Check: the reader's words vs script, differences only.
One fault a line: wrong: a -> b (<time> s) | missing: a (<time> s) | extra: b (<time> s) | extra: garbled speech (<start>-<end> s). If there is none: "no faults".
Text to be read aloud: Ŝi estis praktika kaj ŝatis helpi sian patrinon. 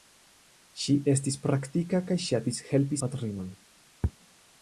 missing: sian (3.0 s)